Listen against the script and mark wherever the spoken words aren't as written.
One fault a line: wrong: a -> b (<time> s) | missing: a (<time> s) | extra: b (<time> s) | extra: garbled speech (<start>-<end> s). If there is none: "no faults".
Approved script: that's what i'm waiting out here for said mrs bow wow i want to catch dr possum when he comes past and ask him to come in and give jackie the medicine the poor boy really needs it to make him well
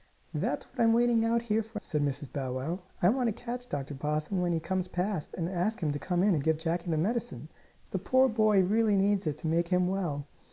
no faults